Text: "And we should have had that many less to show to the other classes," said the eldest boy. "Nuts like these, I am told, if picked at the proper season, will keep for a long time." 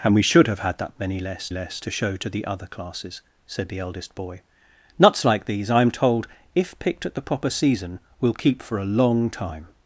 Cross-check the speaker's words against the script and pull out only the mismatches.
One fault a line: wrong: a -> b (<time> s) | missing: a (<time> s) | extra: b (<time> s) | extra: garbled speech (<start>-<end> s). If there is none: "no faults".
extra: less (1.5 s)